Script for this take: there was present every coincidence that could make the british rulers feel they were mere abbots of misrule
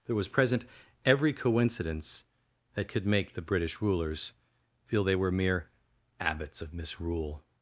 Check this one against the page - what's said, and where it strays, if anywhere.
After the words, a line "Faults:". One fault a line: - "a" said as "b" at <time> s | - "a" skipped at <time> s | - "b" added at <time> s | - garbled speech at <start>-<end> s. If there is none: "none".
there was present every coincidence that could make the british rulers feel they were mere abbots of misrule
Faults:
none